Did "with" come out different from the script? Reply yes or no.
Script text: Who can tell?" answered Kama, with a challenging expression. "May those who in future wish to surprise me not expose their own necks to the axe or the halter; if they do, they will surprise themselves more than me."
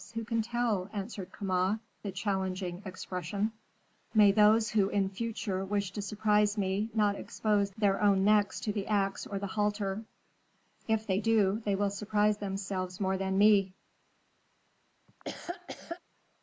yes